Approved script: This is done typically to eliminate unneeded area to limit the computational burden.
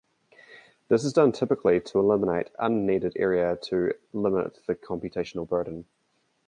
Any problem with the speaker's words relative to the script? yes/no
no